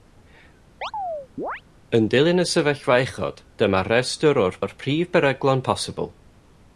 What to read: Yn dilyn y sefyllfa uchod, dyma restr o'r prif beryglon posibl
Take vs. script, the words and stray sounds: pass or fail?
fail